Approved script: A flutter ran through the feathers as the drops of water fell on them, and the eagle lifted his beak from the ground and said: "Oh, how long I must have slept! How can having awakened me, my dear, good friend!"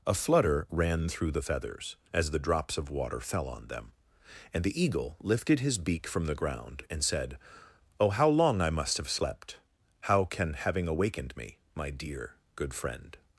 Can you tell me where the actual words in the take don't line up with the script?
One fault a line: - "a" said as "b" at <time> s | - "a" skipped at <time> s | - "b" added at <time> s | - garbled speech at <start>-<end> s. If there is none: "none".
none